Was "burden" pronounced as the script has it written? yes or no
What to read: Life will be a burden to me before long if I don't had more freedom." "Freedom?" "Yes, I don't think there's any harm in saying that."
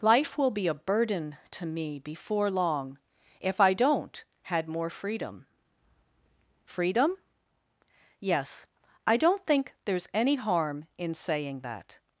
yes